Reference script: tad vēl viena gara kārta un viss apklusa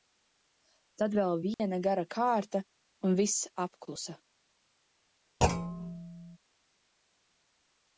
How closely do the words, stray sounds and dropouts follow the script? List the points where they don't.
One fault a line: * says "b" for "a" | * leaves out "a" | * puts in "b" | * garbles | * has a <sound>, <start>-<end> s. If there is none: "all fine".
* has a dropout, 1.5-1.6 s
* has a thud, 5.4-6.4 s